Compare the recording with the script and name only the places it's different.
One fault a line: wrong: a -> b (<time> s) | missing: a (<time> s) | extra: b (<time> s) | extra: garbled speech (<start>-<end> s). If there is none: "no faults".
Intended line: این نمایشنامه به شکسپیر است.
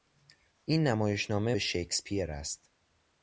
no faults